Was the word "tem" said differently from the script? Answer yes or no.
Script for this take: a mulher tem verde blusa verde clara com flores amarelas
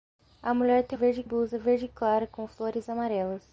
no